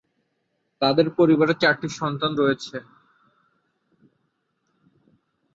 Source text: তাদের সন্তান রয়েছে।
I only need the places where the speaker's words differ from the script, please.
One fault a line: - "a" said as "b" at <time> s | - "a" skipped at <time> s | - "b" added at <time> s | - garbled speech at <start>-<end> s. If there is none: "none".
- "পরিবারে চারটি" added at 1.2 s